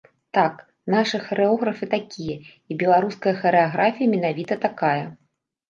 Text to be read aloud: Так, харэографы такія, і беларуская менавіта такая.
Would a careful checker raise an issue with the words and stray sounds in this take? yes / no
yes